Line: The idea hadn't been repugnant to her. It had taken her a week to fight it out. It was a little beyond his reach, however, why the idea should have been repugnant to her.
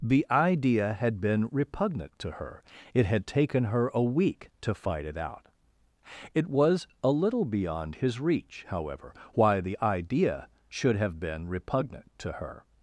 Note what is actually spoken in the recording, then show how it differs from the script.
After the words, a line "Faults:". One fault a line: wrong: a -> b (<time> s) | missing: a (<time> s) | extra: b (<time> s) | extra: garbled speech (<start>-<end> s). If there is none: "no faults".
The idea had been repugnant to her. It had taken her a week to fight it out. It was a little beyond his reach, however, why the idea should have been repugnant to her.
Faults:
wrong: hadn't -> had (0.9 s)